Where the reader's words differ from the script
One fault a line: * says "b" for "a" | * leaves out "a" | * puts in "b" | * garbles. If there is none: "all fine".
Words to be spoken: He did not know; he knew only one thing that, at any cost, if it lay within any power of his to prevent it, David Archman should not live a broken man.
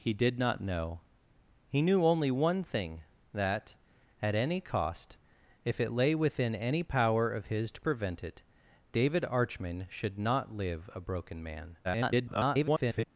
* garbles